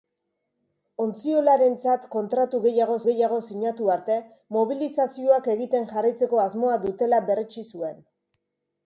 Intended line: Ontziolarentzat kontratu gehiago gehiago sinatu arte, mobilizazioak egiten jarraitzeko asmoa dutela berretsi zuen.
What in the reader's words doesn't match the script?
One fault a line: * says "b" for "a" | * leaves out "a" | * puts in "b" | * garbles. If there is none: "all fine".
all fine